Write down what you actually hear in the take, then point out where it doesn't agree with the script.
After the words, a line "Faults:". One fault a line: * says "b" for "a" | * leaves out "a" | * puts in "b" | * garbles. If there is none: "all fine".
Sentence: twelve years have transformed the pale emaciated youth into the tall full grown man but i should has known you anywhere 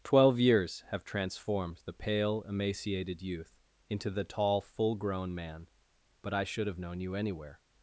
twelve years have transformed the pale emaciated youth into the tall full grown man but i should have known you anywhere
Faults:
* says "have" for "has"